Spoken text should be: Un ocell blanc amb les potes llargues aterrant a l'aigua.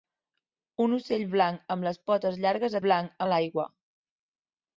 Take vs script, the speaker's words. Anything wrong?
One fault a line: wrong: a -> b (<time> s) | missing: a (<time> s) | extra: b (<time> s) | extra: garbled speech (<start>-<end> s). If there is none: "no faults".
wrong: aterrant -> blanc (2.8 s)